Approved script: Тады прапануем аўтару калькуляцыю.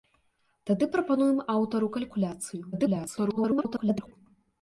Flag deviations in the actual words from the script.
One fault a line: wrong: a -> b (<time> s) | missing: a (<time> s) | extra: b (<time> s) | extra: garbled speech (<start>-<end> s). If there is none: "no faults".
extra: garbled speech (2.7-4.1 s)